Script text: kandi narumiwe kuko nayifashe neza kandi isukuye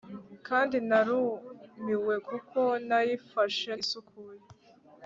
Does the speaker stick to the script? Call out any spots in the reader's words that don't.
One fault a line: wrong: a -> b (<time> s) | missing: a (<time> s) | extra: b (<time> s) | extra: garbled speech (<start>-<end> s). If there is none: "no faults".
missing: neza kandi (3.7 s)